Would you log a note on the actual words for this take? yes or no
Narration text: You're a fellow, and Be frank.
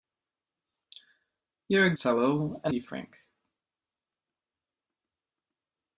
no